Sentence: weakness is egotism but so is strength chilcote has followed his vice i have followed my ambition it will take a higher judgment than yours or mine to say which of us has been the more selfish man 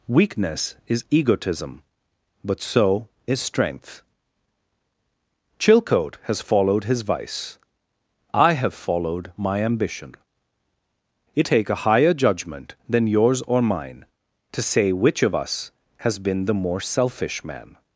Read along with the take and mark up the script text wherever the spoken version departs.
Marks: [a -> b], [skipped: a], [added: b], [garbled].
weakness is egotism but so is strength chilcote has followed his vice i have followed my ambition it [skipped: will] take a higher judgment than yours or mine to say which of us has been the more selfish man